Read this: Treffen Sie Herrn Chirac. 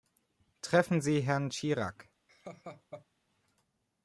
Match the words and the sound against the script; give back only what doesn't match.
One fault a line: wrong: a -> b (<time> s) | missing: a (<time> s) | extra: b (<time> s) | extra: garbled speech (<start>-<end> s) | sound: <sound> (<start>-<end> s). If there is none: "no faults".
sound: laugh (2.3-3.1 s)